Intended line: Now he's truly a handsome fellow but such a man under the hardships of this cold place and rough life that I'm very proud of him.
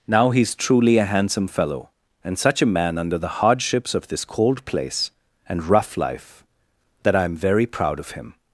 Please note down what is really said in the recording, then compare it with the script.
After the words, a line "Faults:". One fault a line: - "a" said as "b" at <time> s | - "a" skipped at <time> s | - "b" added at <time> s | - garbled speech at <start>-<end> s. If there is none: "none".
Now he's truly a handsome fellow and such a man under the hardships of this cold place and rough life that I'm very proud of him.
Faults:
- "but" said as "and" at 2.2 s